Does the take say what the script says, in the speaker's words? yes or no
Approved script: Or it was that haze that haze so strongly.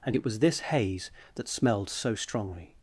no